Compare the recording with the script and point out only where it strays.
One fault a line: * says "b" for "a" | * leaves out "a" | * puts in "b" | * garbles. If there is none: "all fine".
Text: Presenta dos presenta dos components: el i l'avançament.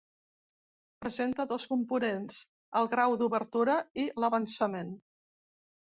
* says "components el grau d'obertura" for "presenta dos components el"